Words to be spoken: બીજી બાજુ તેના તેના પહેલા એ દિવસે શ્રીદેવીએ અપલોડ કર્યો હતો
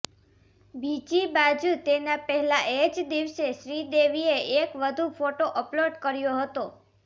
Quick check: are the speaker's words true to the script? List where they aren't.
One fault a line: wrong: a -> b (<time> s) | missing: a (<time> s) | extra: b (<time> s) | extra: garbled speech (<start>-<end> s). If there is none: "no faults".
missing: તેના (2.1 s)
extra: જ (2.9 s)
extra: એક વધુ ફોટો (4.6 s)